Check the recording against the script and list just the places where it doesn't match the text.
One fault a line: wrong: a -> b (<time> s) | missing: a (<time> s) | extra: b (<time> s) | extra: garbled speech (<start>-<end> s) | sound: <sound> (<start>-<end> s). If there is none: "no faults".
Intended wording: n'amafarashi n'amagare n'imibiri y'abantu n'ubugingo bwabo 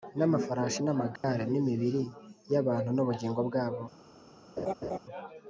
sound: dropout (1.2-1.2 s)
sound: laugh (4.6-5.0 s)